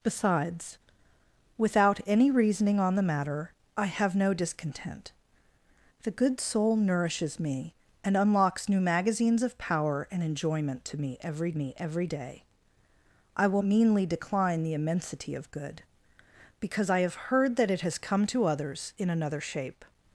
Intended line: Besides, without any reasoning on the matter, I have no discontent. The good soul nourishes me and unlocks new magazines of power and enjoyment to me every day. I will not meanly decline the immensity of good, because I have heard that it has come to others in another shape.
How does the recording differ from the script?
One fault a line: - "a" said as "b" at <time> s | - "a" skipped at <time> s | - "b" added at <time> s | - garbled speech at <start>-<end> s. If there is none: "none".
- "me every" added at 11.5 s
- "not" skipped at 13.6 s